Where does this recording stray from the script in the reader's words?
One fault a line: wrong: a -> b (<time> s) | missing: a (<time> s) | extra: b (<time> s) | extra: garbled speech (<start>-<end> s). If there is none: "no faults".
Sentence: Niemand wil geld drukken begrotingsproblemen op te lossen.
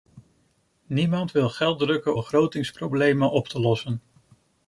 no faults